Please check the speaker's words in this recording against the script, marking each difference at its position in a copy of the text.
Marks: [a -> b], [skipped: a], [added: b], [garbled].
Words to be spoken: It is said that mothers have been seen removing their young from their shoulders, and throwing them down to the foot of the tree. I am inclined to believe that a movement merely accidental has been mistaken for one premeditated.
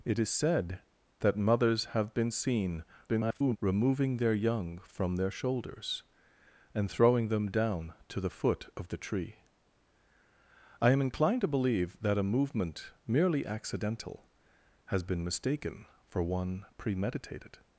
It is said that mothers have been seen [garbled] removing their young from their shoulders, and throwing them down to the foot of the tree. I am inclined to believe that a movement merely accidental has been mistaken for one premeditated.